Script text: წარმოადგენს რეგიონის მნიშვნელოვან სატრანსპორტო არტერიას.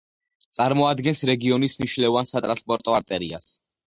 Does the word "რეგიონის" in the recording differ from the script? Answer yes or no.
no